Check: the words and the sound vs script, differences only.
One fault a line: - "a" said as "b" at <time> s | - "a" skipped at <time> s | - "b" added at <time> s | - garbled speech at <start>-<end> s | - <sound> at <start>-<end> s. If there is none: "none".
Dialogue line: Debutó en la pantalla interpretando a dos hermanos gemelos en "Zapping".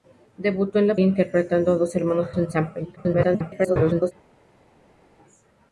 - "pantalla" skipped at 0.9 s
- "gemelos" skipped at 2.3 s
- garbled speech at 3.0-4.1 s